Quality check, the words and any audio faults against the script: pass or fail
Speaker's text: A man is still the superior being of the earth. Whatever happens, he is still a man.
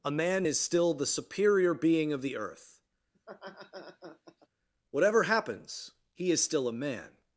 fail